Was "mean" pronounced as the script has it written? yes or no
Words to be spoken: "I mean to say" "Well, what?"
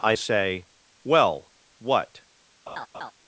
no